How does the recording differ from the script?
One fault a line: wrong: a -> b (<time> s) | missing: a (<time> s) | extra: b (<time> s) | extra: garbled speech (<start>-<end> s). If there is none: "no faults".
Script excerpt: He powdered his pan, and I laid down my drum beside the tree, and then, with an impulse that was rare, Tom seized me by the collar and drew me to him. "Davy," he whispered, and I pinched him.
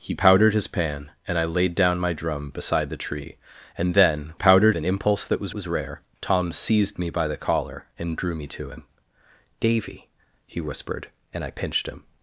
wrong: with -> powdered (4.3 s)
extra: was (5.5 s)